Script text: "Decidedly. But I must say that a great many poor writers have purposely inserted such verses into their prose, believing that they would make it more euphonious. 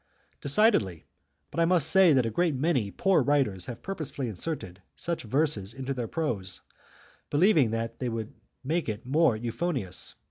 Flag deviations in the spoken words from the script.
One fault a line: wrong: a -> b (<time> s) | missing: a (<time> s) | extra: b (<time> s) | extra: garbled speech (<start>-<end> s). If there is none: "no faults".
no faults